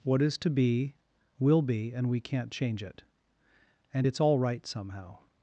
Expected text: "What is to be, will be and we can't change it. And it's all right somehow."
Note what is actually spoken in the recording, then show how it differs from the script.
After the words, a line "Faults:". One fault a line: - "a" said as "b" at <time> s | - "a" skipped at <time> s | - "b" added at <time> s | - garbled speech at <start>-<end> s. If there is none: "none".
"What is to be, will be and we can't change it. And it's all right somehow."
Faults:
none